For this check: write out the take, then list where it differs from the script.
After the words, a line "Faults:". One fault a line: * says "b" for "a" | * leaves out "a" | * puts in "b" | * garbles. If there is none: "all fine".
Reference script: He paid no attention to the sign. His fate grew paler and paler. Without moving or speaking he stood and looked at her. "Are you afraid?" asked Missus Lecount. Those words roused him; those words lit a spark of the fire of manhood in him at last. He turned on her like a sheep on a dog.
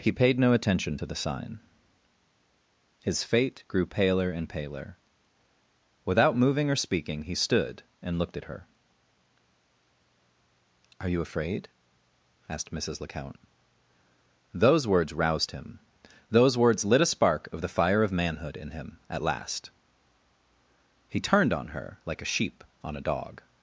He paid no attention to the sign. His fate grew paler and paler. Without moving or speaking he stood and looked at her. "Are you afraid?" asked Missus Lecount. Those words roused him; those words lit a spark of the fire of manhood in him at last. He turned on her like a sheep on a dog.
Faults:
all fine